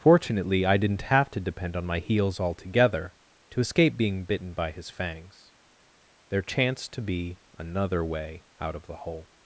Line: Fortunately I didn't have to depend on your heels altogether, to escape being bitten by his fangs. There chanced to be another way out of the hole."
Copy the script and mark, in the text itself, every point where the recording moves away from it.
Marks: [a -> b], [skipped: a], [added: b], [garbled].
Fortunately I didn't have to depend on [your -> my] heels altogether, to escape being bitten by his fangs. There chanced to be another way out of the hole."